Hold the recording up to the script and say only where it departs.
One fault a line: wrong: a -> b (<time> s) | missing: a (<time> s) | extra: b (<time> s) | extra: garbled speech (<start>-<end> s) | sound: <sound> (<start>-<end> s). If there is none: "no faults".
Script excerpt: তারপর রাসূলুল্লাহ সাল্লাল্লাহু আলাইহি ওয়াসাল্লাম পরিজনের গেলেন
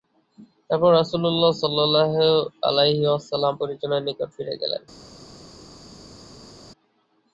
extra: নিকট ফিরে (4.1 s)